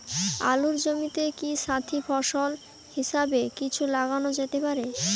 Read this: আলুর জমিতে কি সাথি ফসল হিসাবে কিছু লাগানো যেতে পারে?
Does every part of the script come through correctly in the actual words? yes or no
yes